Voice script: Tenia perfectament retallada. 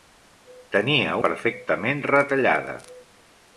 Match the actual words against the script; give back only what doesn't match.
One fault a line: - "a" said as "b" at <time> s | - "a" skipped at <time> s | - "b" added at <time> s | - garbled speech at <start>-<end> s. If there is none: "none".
none